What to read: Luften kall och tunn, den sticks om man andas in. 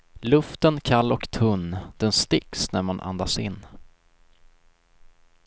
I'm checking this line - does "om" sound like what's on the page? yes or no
no